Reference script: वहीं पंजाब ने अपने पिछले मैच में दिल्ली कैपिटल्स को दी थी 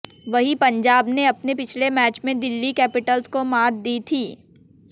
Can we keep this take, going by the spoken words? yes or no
no